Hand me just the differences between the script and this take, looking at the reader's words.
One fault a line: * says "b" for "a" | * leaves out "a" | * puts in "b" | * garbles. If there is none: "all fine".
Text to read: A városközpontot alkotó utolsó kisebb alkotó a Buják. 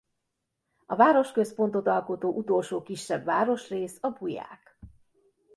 * says "városrész" for "alkotó"